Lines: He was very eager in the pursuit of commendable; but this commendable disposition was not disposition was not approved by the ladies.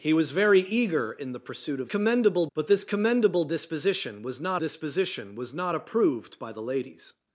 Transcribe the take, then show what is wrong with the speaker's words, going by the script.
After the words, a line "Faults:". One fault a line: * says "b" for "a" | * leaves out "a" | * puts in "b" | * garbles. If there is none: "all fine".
He was very eager in the pursuit of commendable; but this commendable disposition was not disposition was not approved by the ladies.
Faults:
all fine